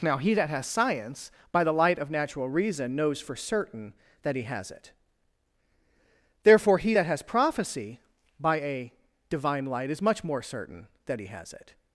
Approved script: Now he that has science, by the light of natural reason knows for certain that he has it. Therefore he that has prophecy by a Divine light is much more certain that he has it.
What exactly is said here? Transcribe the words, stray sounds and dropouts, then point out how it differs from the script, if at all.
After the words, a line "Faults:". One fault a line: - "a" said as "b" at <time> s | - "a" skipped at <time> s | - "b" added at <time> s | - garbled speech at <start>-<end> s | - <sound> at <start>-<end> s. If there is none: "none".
Now he that has science, by the light of natural reason knows for certain that he has it. Therefore he that has prophecy by a Divine light is much more certain that he has it.
Faults:
none